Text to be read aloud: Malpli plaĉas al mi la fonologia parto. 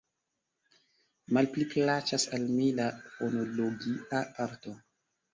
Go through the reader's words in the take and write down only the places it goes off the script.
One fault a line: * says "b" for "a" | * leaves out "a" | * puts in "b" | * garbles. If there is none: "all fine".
all fine